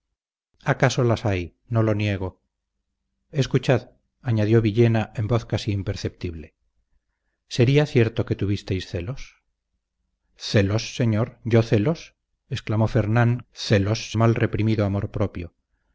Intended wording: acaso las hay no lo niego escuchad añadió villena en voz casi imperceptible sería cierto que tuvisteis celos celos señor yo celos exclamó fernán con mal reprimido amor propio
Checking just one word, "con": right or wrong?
wrong